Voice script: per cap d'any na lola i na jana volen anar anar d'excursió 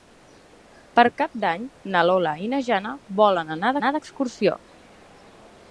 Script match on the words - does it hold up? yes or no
yes